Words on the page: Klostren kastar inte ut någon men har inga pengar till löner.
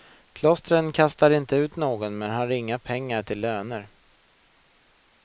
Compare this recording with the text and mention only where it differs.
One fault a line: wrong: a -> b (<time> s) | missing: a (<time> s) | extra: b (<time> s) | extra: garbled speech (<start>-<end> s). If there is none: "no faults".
no faults